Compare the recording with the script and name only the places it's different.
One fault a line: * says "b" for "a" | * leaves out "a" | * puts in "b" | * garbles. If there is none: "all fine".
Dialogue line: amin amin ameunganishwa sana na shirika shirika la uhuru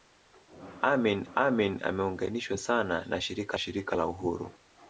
all fine